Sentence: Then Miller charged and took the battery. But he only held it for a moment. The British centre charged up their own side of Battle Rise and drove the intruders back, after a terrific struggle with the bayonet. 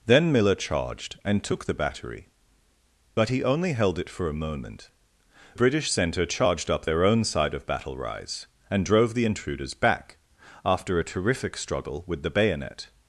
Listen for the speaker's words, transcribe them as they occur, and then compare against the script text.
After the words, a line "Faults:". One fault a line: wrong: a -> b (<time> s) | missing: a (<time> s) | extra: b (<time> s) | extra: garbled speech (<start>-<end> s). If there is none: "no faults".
Then Miller charged and took the battery. But he only held it for a moment. British centre charged up their own side of Battle Rise and drove the intruders back, after a terrific struggle with the bayonet.
Faults:
missing: The (4.9 s)